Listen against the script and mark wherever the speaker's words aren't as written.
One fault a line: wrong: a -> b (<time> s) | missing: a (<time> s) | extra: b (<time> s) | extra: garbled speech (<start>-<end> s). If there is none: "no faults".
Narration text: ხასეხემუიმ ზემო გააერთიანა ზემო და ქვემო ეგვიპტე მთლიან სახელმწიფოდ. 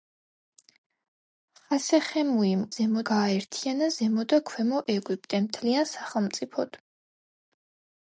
no faults